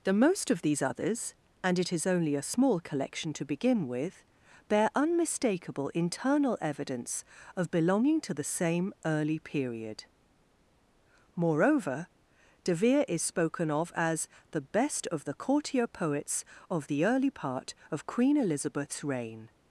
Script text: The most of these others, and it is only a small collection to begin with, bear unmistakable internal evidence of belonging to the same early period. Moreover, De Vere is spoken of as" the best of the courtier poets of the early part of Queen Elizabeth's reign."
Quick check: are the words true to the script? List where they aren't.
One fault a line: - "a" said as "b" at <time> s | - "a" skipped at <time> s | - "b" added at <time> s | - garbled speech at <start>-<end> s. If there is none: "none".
none